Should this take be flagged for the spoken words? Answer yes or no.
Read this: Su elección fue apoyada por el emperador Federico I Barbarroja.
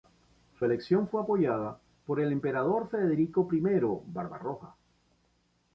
no